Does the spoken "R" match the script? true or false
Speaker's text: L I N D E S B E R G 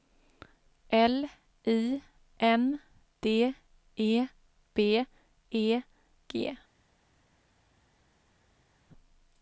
false